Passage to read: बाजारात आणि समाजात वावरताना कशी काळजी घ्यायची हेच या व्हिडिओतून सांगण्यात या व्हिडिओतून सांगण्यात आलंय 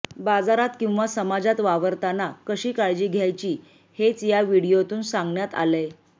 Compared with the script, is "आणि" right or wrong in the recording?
wrong